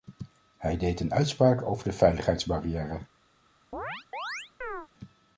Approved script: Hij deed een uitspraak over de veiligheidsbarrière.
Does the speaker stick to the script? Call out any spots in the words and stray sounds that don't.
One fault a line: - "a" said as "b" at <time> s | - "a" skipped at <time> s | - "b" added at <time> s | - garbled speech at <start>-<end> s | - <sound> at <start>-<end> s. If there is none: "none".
- chirp at 3.7-4.9 s